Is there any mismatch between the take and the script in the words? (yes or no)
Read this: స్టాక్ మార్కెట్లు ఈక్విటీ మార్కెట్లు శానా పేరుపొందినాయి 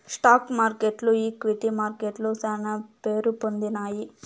no